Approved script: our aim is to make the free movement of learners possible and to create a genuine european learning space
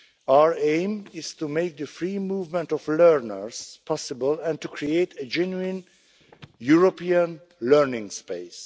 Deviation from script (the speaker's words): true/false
false